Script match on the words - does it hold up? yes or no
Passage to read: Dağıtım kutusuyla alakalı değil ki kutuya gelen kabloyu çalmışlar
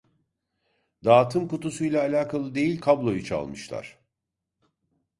no